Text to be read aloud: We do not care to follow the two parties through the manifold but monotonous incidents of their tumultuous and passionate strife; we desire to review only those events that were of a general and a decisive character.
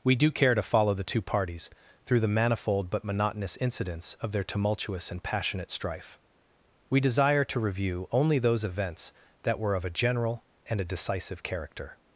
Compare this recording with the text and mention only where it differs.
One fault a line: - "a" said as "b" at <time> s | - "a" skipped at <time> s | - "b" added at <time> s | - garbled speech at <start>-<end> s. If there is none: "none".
- "not" skipped at 0.3 s